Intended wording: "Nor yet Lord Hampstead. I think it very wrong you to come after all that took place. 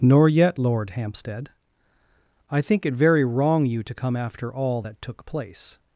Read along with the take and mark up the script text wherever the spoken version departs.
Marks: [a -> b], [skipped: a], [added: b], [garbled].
"Nor yet Lord Hampstead. I think it very wrong you to come after all that took place.